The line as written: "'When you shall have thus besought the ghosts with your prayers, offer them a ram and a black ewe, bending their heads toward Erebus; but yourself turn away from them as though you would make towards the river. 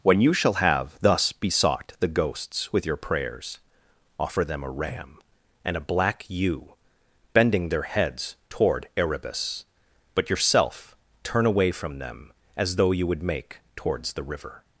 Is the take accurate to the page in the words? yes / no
yes